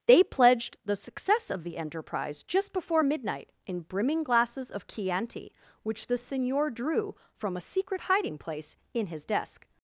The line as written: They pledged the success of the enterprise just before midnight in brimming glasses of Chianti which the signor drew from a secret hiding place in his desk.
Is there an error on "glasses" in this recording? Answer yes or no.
no